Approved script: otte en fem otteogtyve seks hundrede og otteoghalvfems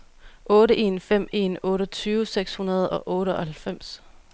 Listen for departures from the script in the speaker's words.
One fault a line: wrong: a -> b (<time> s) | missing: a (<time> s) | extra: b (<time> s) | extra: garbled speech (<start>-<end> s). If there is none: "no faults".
extra: en (1.3 s)